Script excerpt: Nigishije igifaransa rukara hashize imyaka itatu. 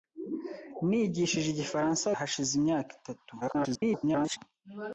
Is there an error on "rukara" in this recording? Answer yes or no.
yes